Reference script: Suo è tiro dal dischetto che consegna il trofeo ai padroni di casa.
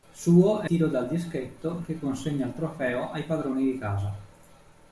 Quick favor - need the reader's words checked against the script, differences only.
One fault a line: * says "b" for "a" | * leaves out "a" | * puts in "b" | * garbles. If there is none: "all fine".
all fine